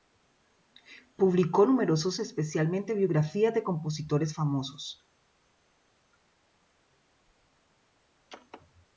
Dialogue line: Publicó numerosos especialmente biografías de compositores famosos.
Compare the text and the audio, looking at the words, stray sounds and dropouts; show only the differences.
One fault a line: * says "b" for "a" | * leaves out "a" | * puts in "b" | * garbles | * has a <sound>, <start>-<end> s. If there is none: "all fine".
all fine